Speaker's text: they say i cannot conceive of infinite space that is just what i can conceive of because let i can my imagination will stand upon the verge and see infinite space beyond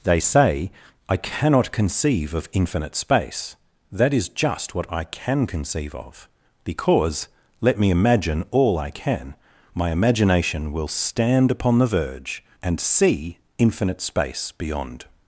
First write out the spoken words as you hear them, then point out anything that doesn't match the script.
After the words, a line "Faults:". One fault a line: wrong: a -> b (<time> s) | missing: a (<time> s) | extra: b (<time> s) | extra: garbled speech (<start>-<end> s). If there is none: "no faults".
they say i cannot conceive of infinite space that is just what i can conceive of because let me imagine all i can my imagination will stand upon the verge and see infinite space beyond
Faults:
extra: me imagine all (7.8 s)